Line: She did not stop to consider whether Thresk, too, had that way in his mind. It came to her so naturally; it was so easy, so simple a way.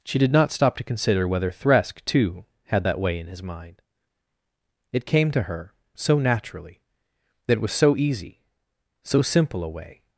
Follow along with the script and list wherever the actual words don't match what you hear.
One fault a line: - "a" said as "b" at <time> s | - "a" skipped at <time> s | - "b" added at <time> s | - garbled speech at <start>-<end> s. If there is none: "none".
- "that" added at 7.5 s